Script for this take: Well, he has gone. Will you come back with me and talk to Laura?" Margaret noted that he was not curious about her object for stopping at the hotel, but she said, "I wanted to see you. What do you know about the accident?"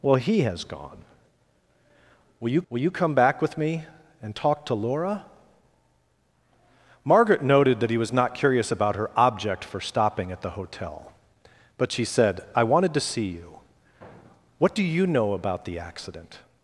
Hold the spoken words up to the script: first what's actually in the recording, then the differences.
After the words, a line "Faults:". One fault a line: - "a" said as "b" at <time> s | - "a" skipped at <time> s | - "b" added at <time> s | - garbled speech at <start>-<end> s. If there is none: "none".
Well, he has gone. Will you will you come back with me and talk to Laura?" Margaret noted that he was not curious about her object for stopping at the hotel, but she said, "I wanted to see you. What do you know about the accident?"
Faults:
- "will you" added at 2.7 s